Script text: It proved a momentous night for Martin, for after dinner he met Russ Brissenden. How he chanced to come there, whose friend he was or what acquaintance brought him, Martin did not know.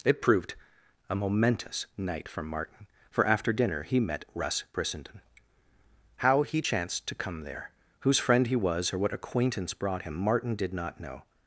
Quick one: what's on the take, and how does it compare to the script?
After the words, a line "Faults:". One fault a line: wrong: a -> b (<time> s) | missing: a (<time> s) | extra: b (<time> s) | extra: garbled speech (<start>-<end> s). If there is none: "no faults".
It proved a momentous night for Martin, for after dinner he met Russ Brissenden. How he chanced to come there, whose friend he was or what acquaintance brought him, Martin did not know.
Faults:
no faults